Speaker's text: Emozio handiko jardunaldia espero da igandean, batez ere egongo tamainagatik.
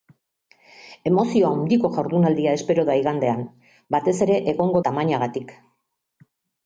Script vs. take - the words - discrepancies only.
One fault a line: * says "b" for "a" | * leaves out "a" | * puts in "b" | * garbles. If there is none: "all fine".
all fine